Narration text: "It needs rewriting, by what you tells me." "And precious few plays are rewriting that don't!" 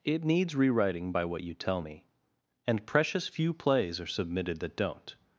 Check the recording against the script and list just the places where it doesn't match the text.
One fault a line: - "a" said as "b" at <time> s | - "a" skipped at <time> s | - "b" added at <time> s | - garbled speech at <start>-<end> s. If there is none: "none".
- "tells" said as "tell" at 1.5 s
- "rewriting" said as "submitted" at 4.1 s